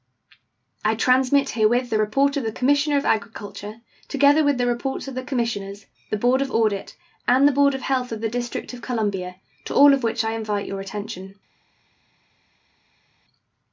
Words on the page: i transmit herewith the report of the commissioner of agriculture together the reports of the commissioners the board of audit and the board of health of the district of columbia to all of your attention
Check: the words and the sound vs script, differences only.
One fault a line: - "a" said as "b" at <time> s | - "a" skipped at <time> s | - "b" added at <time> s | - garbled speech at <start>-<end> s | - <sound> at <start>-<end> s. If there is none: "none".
- "with" added at 4.4 s
- "which i invite" added at 10.0 s